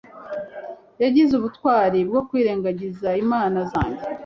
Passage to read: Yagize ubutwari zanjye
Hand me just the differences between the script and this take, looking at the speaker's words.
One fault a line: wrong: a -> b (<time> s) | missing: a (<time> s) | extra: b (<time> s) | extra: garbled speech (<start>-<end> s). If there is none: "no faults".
extra: bwo kwirengagiza inama (2.1 s)